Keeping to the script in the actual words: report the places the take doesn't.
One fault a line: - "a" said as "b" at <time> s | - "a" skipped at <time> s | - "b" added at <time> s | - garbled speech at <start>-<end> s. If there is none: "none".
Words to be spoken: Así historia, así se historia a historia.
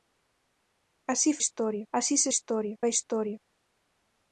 none